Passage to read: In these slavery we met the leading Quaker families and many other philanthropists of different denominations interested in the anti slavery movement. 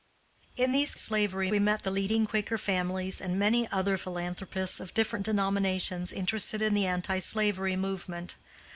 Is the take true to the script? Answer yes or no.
yes